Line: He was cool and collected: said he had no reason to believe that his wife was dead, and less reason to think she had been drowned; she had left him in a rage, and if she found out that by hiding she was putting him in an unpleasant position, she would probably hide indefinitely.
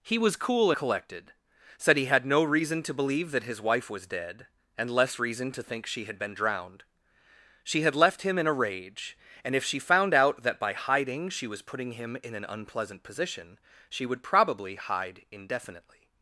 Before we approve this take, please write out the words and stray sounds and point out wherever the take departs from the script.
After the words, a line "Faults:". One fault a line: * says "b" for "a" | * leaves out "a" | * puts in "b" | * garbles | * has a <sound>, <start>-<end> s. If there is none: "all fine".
He was cool collected: said he had no reason to believe that his wife was dead, and less reason to think she had been drowned; she had left him in a rage, and if she found out that by hiding she was putting him in an unpleasant position, she would probably hide indefinitely.
Faults:
* leaves out "and"